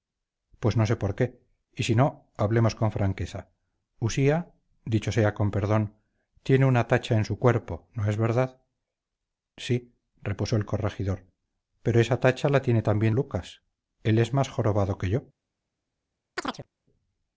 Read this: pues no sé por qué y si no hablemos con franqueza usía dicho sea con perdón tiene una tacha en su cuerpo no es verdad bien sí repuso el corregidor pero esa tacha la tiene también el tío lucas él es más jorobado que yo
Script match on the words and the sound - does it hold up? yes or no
no